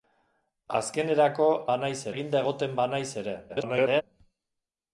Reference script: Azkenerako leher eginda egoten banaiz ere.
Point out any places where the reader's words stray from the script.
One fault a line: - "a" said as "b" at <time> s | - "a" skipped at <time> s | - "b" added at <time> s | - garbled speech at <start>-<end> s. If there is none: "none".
- "leher" said as "banaiz" at 1.7 s
- garbled speech at 3.5-4.0 s